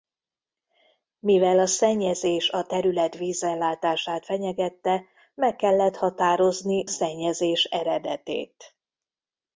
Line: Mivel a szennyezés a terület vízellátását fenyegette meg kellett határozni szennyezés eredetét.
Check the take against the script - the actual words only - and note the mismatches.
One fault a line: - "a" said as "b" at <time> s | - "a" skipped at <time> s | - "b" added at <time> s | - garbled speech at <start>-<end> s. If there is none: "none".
none